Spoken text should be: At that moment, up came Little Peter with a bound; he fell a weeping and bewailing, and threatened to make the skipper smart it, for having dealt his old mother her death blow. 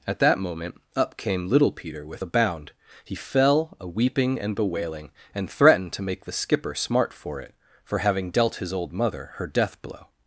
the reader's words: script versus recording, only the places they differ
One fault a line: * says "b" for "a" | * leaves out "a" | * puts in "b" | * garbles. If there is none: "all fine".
* puts in "for"